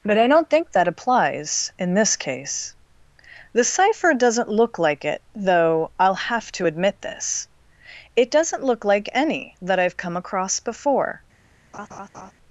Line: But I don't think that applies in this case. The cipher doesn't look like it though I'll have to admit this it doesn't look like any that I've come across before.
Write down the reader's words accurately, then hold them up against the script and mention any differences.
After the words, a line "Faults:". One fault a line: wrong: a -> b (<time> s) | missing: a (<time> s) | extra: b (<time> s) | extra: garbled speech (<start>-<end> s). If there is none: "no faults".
But I don't think that applies in this case. The cipher doesn't look like it though I'll have to admit this it doesn't look like any that I've come across before.
Faults:
no faults